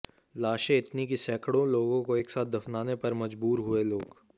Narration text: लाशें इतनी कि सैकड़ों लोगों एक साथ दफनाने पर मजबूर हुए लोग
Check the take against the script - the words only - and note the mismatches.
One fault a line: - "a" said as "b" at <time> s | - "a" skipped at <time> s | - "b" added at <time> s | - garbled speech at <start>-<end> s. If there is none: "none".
- "को" added at 2.0 s